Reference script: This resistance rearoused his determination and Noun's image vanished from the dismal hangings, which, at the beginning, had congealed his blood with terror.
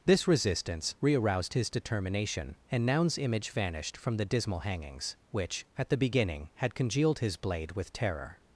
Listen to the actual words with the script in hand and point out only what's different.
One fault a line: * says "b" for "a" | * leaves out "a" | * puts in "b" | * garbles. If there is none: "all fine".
* says "blade" for "blood"